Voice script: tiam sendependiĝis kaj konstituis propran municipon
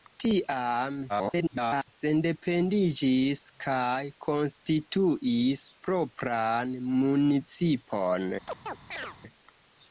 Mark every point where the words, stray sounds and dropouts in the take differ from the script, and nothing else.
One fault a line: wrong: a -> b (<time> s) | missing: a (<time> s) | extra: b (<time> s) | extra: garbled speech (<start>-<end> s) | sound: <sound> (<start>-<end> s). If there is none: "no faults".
extra: garbled speech (1.1-1.9 s)
sound: chirp (8.5-9.2 s)